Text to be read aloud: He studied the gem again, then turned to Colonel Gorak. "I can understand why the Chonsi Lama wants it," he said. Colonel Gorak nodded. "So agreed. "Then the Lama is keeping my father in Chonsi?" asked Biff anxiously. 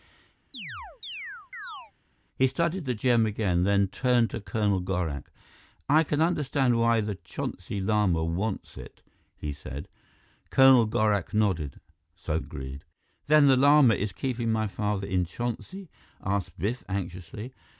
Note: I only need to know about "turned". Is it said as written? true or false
true